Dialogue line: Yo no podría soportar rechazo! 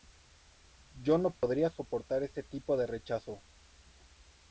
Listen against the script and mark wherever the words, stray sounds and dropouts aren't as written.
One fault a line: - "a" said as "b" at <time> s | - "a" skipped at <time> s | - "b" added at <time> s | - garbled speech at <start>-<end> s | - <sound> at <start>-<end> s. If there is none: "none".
- dropout at 1.4-1.4 s
- "ese tipo de" added at 2.2 s